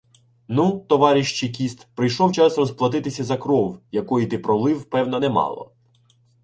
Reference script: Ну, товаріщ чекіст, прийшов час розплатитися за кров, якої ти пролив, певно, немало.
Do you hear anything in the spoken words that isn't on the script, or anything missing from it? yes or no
no